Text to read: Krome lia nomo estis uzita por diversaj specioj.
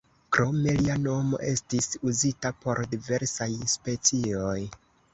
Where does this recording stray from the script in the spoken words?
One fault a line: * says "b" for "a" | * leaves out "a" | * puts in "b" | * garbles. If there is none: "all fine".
all fine